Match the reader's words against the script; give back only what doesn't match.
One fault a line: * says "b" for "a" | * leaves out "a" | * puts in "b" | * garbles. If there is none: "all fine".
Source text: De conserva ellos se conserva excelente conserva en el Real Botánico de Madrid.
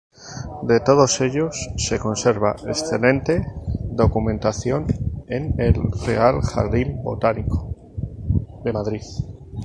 * says "todos" for "conserva"
* says "documentación" for "conserva"
* puts in "Jardín"